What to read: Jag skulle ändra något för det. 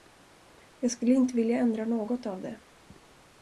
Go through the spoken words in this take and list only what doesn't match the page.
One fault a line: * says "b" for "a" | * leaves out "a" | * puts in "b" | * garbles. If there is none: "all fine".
* puts in "inte vilja"
* says "av" for "för"